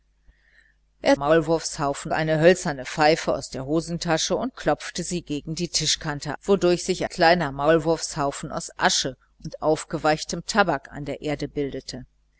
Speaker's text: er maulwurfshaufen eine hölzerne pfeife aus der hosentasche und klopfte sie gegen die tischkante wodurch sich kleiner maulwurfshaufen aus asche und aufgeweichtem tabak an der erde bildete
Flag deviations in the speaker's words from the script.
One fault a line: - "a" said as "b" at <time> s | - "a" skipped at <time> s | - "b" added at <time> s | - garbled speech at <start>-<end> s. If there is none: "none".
none